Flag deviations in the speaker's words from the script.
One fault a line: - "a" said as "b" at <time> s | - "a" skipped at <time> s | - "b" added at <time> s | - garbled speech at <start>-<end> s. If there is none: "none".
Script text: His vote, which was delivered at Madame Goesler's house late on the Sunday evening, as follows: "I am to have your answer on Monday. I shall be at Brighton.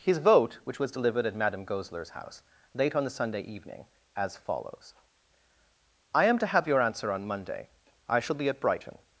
none